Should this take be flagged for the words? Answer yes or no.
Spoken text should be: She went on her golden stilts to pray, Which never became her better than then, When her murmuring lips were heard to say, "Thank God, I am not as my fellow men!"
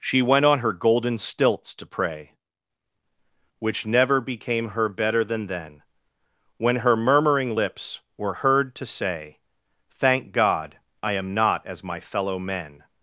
no